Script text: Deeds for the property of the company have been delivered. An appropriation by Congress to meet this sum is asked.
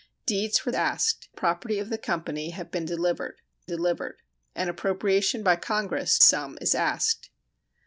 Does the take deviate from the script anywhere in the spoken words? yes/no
yes